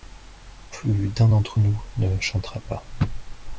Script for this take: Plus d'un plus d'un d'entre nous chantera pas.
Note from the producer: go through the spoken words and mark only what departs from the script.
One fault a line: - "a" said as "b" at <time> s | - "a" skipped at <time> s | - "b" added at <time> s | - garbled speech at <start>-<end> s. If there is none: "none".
- "plus d'un" skipped at 1.3 s
- "ne" added at 2.0 s